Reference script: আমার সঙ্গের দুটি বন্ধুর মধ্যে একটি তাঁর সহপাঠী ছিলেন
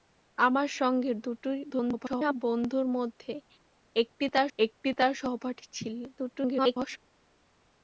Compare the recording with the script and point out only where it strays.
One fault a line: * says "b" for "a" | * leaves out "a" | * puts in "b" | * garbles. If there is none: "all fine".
* garbles
* puts in "একটি তাঁর"
* garbles